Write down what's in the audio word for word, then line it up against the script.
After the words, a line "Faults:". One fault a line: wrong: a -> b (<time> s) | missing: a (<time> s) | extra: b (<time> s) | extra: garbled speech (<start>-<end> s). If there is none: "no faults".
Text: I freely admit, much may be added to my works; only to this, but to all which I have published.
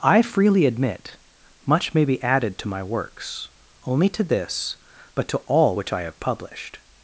I freely admit, much may be added to my works; only to this, but to all which I have published.
Faults:
no faults